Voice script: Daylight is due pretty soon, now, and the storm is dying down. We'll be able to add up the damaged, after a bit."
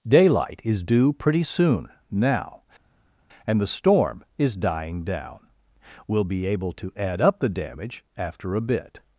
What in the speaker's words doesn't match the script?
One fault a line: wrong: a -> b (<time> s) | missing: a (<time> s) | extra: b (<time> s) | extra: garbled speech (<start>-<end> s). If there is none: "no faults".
wrong: damaged -> damage (7.5 s)